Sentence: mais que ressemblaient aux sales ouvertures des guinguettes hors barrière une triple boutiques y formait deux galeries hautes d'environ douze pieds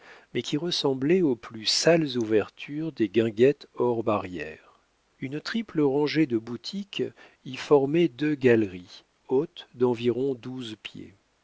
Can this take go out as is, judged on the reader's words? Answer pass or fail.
fail